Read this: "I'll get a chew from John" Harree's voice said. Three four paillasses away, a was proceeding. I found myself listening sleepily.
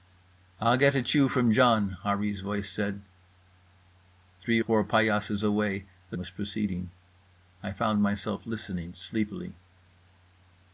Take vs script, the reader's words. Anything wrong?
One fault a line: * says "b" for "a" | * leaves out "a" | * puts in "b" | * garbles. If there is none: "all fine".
all fine